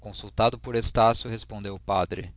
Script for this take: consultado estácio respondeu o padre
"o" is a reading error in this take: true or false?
false